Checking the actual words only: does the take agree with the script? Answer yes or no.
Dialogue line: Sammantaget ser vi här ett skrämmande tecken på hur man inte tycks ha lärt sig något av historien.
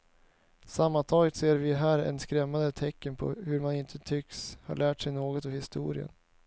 yes